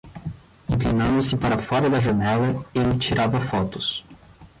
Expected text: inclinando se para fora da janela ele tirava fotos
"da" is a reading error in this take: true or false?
false